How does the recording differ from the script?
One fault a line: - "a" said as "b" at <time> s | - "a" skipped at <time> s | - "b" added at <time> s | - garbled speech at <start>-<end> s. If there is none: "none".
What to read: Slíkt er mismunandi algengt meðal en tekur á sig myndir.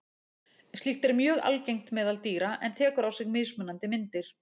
- "mismunandi" said as "mjög" at 1.2 s
- "dýra" added at 2.3 s
- "mismunandi" added at 3.4 s